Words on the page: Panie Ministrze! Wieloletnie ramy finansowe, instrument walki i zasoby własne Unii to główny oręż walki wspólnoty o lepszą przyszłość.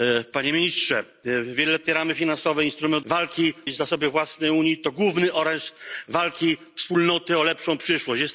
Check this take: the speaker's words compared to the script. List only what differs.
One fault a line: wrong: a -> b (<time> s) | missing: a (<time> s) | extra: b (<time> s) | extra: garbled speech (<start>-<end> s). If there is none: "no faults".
no faults